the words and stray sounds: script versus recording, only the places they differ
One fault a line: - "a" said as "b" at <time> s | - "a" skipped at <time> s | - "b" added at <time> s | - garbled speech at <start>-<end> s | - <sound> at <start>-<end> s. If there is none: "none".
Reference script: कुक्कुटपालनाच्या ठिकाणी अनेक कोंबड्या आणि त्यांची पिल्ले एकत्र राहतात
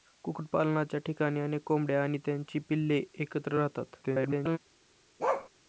- garbled speech at 4.0-4.6 s
- bark at 5.2-5.5 s